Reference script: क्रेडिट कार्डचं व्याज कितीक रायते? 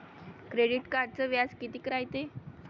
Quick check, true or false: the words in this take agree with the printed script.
true